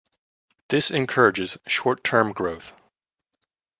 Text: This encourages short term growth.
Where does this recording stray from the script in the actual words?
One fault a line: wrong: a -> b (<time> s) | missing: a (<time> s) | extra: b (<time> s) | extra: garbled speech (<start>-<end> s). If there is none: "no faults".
no faults